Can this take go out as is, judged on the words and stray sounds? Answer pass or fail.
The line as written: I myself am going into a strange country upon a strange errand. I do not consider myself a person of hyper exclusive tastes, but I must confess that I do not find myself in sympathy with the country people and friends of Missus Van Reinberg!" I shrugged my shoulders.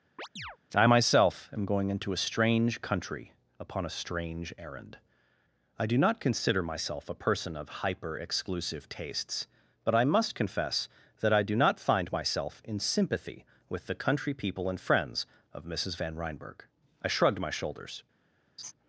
fail